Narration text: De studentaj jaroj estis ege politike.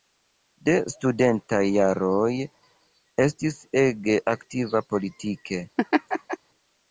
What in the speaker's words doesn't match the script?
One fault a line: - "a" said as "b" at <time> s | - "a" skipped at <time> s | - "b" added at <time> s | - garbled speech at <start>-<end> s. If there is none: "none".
- "aktiva" added at 4.3 s